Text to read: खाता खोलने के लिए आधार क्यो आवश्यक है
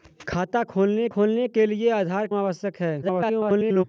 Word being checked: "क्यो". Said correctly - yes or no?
no